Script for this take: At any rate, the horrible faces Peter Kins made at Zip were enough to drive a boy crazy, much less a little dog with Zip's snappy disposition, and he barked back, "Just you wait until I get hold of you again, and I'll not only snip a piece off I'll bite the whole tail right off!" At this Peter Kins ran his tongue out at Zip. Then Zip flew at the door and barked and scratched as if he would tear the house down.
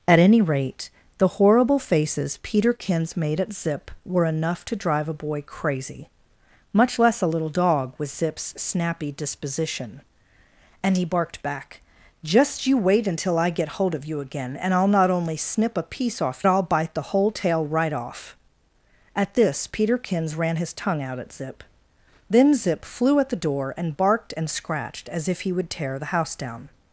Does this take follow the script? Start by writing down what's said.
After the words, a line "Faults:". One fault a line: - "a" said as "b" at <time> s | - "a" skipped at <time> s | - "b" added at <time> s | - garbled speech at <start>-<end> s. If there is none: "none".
At any rate, the horrible faces Peter Kins made at Zip were enough to drive a boy crazy, much less a little dog with Zip's snappy disposition, and he barked back, "Just you wait until I get hold of you again, and I'll not only snip a piece off I'll bite the whole tail right off!" At this Peter Kins ran his tongue out at Zip. Then Zip flew at the door and barked and scratched as if he would tear the house down.
Faults:
none